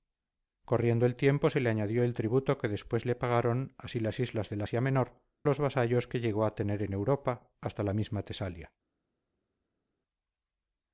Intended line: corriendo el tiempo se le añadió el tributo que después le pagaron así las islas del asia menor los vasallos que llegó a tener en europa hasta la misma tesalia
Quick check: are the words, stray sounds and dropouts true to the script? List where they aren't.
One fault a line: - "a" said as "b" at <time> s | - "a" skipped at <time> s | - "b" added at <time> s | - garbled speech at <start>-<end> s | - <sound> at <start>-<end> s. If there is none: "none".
none